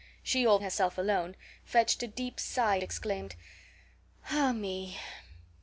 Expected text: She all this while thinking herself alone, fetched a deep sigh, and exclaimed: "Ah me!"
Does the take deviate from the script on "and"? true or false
true